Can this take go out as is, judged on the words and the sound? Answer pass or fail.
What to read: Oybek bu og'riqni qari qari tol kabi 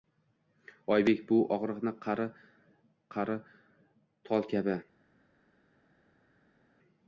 pass